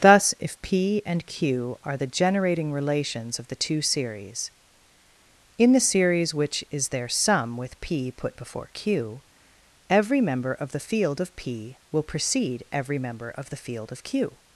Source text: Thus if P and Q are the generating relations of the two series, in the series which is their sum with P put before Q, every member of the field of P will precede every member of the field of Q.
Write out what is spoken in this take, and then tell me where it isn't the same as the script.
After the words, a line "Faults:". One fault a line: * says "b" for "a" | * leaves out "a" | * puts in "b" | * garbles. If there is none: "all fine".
Thus if P and Q are the generating relations of the two series, in the series which is their sum with P put before Q, every member of the field of P will precede every member of the field of Q.
Faults:
all fine